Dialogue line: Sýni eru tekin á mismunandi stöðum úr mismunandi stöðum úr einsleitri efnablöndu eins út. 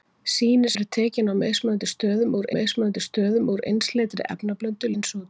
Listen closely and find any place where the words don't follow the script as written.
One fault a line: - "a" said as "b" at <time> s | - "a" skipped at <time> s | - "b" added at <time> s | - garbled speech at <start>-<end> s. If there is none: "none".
none